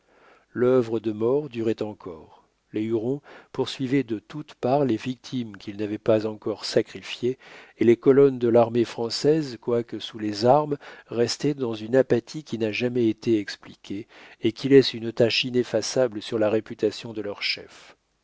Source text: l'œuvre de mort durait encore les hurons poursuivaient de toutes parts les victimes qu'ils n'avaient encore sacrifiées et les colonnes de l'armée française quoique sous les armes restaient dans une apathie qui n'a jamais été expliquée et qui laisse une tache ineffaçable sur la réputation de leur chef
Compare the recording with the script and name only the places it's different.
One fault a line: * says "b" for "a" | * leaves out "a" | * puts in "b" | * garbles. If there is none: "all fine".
* puts in "pas"